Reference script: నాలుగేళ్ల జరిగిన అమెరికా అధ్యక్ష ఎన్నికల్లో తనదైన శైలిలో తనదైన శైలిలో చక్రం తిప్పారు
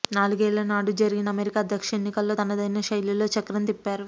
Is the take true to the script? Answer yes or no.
no